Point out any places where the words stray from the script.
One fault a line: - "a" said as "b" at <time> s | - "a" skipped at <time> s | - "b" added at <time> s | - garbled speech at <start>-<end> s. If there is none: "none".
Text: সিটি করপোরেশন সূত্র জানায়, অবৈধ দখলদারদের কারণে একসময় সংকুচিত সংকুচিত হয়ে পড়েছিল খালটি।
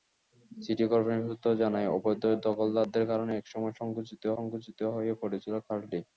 none